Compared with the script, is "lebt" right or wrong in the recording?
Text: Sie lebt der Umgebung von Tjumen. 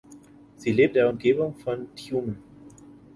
right